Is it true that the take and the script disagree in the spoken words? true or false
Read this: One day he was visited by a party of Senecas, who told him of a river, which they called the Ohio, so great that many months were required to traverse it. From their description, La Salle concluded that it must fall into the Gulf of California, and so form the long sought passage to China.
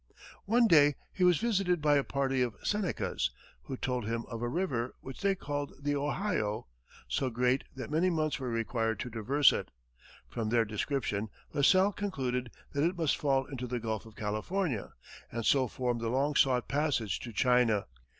false